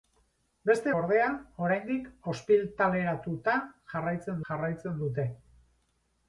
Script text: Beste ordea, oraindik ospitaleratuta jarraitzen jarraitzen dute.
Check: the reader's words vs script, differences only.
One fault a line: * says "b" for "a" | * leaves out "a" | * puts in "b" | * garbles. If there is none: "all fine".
all fine